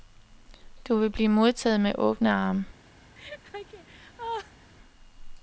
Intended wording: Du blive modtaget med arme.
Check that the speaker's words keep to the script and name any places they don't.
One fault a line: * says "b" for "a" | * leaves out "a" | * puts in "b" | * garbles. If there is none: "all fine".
* puts in "vil"
* puts in "åbne"